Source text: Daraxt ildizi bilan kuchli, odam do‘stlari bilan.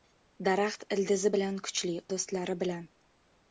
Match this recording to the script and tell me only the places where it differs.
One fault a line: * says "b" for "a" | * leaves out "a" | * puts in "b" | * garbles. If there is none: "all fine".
* leaves out "odam"